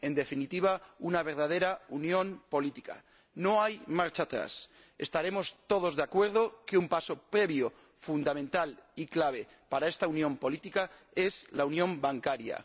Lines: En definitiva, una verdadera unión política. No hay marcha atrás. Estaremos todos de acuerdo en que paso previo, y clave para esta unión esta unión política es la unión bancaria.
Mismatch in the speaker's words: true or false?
true